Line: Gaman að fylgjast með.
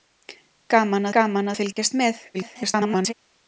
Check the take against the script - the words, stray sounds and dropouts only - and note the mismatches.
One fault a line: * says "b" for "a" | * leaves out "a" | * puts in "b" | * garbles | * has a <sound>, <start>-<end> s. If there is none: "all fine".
* puts in "gaman"
* has a dropout, 1.7-1.8 s
* garbles